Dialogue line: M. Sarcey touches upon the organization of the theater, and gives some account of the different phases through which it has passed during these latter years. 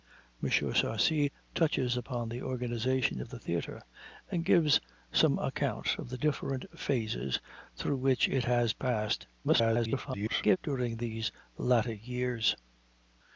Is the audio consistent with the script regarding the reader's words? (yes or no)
no